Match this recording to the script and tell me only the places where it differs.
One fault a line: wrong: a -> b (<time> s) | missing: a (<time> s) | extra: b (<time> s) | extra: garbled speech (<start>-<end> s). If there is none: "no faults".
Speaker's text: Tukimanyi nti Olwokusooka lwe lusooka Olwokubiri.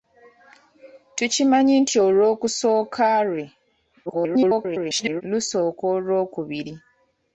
extra: garbled speech (4.1-5.2 s)